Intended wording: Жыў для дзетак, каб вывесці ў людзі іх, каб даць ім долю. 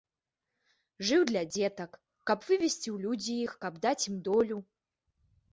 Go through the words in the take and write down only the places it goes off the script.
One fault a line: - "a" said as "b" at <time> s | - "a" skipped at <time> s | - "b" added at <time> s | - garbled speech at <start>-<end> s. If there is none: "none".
none